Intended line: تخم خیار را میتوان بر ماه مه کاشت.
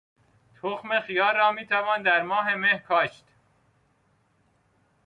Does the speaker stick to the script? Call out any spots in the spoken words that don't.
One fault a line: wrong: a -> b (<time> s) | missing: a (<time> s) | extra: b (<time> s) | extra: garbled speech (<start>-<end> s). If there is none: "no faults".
wrong: بر -> در (2.0 s)